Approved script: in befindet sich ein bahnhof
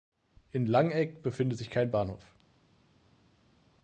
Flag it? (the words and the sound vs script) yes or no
yes